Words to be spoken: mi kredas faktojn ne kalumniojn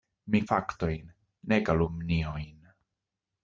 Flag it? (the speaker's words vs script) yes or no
yes